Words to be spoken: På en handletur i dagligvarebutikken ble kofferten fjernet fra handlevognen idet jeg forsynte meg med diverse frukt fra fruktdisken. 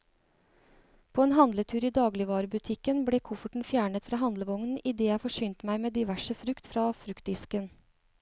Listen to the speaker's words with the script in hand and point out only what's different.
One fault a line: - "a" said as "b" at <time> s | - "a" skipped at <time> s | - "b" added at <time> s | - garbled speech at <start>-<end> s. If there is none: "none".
none